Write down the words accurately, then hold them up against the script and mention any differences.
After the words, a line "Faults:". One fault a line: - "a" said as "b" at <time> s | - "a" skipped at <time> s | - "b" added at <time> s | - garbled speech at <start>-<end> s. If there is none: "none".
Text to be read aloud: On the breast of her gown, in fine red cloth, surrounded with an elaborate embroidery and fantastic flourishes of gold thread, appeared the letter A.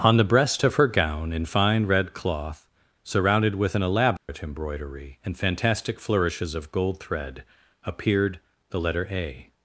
On the breast of her gown, in fine red cloth, surrounded with an elaborate embroidery and fantastic flourishes of gold thread, appeared the letter A.
Faults:
none